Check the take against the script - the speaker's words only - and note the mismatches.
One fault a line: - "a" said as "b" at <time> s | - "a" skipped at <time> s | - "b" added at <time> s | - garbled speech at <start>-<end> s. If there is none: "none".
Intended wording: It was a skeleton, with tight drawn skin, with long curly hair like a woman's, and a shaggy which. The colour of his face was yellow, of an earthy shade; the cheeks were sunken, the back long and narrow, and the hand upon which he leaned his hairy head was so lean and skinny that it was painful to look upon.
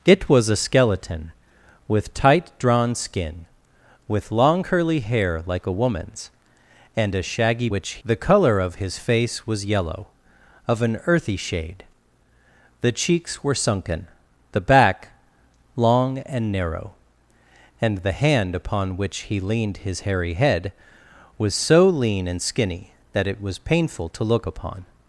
none